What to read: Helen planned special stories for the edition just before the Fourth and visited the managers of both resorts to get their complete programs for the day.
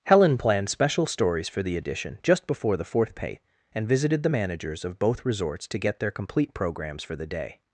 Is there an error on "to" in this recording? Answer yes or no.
no